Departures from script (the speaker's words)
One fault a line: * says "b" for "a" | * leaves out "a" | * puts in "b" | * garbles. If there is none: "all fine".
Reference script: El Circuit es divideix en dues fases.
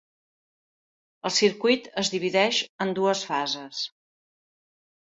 all fine